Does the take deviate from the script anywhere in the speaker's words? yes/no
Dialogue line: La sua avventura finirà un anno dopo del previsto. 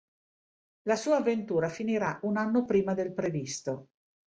yes